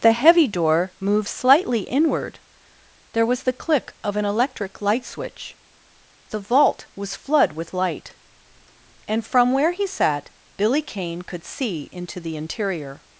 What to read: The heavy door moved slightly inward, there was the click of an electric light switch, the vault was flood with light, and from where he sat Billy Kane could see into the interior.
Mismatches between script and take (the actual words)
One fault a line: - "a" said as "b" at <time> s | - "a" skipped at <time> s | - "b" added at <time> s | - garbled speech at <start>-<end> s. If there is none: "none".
none